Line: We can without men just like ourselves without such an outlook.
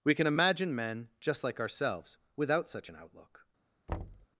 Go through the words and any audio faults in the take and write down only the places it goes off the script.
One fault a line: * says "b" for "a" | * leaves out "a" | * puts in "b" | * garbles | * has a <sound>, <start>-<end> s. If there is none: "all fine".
* says "imagine" for "without"
* has a thud, 3.9-4.3 s